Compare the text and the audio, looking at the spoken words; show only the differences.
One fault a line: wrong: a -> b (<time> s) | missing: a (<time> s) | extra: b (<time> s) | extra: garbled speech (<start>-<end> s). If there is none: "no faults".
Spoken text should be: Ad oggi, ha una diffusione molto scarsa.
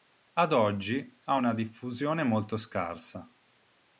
no faults